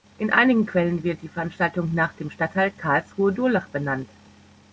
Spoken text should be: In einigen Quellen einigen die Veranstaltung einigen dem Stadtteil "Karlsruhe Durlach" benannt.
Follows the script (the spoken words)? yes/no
no